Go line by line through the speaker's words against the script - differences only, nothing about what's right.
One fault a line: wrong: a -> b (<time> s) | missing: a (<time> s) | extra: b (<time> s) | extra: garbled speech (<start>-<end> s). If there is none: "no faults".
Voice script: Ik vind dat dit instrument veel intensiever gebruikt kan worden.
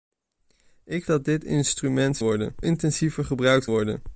missing: vind (1.1 s)
wrong: veel -> worden (2.2 s)
missing: kan (3.7 s)